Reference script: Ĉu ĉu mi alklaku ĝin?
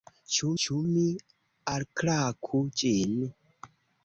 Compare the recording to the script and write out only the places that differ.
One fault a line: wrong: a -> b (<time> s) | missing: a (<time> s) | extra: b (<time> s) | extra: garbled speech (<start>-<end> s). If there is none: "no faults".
no faults